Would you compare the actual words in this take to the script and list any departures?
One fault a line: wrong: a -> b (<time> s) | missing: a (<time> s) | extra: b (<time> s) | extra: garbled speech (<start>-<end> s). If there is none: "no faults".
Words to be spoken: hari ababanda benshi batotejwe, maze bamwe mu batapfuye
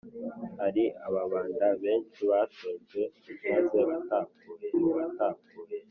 wrong: bamwe -> batapfuye (3.9 s)